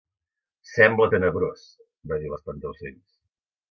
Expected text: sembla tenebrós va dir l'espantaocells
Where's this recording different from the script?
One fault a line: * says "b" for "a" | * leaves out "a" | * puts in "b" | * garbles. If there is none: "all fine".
all fine